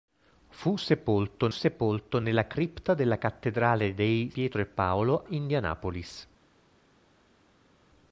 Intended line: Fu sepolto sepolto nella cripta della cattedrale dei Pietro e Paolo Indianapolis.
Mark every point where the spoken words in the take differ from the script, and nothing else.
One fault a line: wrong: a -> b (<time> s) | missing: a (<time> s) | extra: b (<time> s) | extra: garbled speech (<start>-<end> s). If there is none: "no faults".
no faults